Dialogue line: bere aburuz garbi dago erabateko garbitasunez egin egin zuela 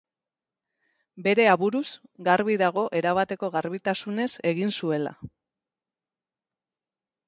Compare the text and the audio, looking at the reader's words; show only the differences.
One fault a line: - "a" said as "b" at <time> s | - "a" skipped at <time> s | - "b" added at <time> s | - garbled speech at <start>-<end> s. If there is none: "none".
- "egin" skipped at 4.8 s